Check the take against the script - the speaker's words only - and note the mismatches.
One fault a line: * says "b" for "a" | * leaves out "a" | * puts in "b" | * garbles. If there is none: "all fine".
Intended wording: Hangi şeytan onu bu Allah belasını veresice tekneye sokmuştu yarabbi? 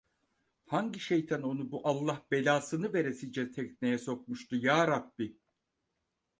all fine